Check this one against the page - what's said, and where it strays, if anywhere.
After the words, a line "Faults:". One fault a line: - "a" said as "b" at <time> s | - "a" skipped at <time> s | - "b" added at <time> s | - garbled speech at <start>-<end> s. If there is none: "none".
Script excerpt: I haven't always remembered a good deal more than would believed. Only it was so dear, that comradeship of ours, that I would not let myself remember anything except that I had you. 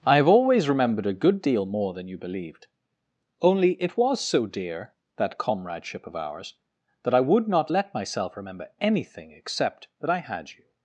I have always remembered a good deal more than you believed. Only it was so dear, that comradeship of ours, that I would not let myself remember anything except that I had you.
Faults:
- "haven't" said as "have" at 0.1 s
- "would" said as "you" at 2.1 s